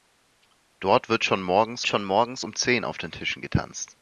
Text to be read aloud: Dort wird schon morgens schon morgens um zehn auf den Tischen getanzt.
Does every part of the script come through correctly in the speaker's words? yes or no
yes